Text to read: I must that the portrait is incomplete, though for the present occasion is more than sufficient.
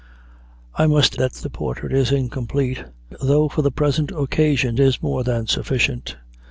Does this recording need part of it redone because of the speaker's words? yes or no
no